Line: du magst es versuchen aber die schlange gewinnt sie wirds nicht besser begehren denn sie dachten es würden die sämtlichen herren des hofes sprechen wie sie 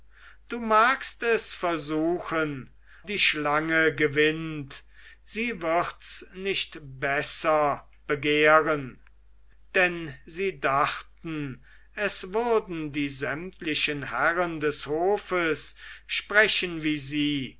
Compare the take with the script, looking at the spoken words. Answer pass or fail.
fail